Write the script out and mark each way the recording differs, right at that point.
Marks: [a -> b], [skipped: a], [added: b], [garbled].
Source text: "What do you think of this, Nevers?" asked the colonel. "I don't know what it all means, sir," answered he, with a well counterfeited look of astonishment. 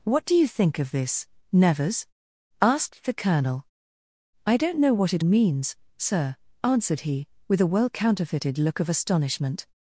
"What do you think of this, Nevers?" asked the colonel. "I don't know what it [skipped: all] means, sir," answered he, with a well counterfeited look of astonishment.